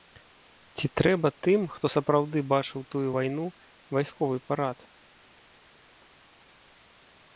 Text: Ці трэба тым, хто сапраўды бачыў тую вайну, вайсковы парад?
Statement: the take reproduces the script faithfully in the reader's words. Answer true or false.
true